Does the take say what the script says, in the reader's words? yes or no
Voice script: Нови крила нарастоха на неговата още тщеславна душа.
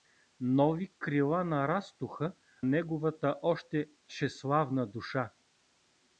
no